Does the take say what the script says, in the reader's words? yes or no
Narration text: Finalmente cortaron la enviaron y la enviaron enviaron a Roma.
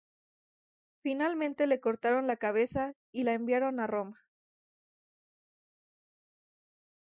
no